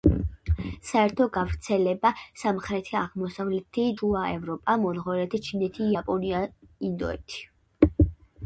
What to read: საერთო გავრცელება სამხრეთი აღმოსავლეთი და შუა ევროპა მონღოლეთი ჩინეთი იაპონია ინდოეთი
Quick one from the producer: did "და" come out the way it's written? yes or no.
no